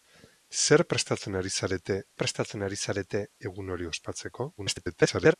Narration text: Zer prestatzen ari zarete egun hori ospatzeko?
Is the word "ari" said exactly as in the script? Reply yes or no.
yes